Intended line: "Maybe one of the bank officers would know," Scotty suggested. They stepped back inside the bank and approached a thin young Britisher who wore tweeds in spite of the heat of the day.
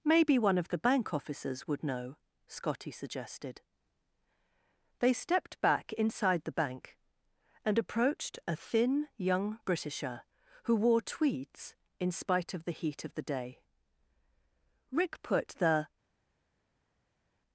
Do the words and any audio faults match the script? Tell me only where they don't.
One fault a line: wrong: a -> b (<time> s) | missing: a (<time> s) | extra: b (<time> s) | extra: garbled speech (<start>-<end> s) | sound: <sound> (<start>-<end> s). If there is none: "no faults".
extra: Rick put the (14.9 s)